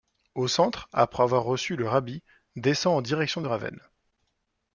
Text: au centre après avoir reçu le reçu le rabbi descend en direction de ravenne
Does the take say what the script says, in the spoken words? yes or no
no